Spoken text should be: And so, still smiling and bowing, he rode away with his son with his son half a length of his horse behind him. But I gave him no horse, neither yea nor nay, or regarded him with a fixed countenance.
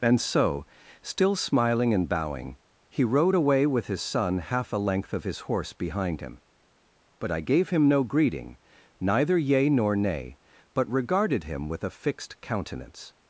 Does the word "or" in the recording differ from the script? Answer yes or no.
yes